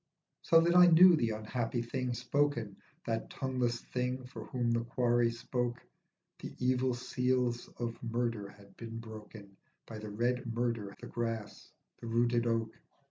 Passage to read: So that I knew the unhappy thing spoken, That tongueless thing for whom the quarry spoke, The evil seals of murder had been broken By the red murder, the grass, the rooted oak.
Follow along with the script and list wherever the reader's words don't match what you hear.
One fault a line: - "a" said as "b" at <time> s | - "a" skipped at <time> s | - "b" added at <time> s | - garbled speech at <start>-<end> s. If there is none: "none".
none